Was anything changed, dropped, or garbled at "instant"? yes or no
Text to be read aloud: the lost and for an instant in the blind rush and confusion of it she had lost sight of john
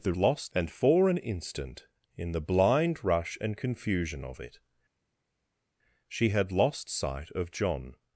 no